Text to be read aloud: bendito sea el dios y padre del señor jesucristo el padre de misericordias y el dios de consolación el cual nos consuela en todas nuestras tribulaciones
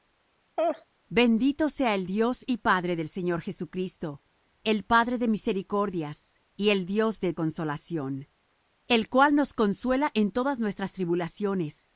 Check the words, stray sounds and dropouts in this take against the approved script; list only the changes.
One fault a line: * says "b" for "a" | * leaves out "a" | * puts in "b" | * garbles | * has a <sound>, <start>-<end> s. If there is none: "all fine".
* has a laugh, 0.6-0.9 s